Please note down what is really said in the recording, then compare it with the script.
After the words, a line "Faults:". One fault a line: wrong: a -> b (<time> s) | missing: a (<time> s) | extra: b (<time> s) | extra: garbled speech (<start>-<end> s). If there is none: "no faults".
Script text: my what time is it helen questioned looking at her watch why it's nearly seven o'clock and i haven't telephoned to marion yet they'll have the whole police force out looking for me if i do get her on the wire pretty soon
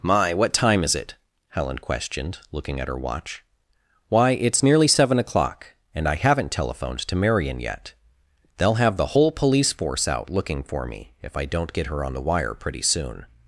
my what time is it helen questioned looking at her watch why it's nearly seven o'clock and i haven't telephoned to marion yet they'll have the whole police force out looking for me if i don't get her on the wire pretty soon
Faults:
wrong: do -> don't (11.4 s)